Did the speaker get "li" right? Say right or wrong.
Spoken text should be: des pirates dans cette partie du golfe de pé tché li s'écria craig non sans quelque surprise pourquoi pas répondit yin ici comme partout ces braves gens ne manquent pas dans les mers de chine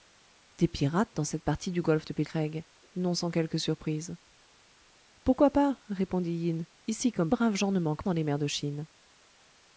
wrong